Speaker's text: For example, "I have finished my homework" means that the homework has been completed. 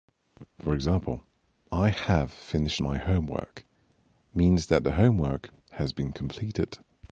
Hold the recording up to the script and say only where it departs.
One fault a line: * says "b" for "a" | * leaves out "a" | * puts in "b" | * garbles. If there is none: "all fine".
all fine